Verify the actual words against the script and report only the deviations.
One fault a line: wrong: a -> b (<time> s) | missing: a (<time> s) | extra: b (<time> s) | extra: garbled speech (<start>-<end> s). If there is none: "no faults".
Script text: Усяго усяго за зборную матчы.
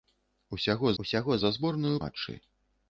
no faults